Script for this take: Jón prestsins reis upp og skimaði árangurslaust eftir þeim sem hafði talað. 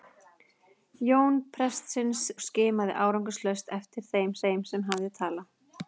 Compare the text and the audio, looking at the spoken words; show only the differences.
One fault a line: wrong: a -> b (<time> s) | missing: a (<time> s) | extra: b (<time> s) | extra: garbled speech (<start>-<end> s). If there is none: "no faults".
missing: reis upp (2.2 s)
extra: þeim (4.4 s)